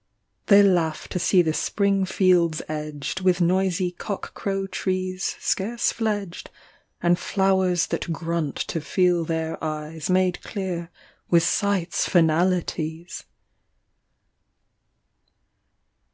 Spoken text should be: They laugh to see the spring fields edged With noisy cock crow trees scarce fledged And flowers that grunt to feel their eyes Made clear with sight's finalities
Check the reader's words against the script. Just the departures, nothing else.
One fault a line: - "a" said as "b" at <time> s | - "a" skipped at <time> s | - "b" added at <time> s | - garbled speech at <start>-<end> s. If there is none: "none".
none